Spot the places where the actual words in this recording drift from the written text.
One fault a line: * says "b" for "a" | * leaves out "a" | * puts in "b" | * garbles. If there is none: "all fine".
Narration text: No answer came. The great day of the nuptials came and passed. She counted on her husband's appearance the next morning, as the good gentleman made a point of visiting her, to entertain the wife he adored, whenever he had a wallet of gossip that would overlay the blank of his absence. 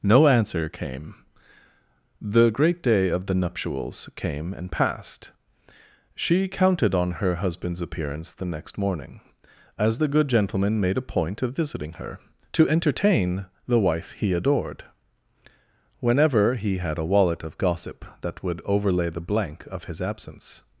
all fine